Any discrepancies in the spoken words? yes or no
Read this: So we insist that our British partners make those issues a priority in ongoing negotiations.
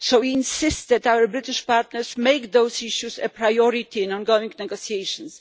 no